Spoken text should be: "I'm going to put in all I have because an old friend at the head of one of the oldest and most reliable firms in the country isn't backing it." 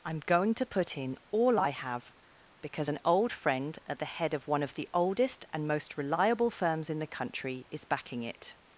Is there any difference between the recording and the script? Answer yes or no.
yes